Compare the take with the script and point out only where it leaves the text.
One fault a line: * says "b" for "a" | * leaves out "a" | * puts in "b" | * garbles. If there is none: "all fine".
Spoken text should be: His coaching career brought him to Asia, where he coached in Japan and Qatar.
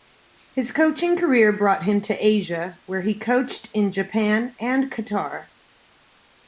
all fine